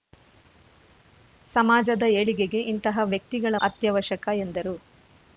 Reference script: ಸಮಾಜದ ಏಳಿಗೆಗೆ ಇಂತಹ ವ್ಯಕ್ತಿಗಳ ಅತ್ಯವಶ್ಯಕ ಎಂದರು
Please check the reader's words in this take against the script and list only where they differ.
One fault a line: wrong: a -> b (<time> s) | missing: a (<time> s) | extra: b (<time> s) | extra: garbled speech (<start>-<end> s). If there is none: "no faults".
no faults